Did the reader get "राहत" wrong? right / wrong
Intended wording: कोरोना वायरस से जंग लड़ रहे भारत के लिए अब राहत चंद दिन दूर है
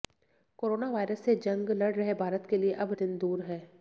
wrong